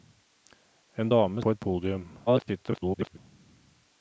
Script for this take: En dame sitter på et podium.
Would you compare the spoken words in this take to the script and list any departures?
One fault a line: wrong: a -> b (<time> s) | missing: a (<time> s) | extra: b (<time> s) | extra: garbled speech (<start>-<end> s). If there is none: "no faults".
missing: sitter (1.4 s)
extra: garbled speech (2.3-3.2 s)